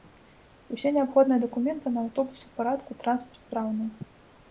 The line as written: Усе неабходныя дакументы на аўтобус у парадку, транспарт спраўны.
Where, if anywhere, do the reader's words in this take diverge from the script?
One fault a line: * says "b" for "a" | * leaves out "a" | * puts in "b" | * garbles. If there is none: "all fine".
all fine